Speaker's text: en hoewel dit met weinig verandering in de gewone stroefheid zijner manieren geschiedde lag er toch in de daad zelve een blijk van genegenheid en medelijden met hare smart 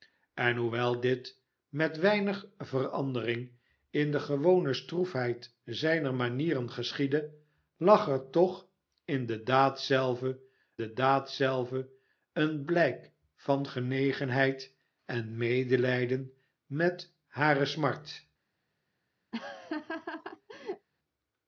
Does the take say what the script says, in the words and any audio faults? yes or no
no